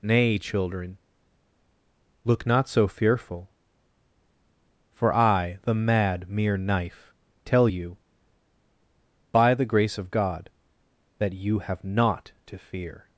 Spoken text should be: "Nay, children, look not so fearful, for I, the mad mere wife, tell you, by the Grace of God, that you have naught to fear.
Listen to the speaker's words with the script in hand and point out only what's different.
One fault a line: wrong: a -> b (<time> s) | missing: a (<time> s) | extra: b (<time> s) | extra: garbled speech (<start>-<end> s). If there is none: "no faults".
wrong: wife -> knife (6.6 s)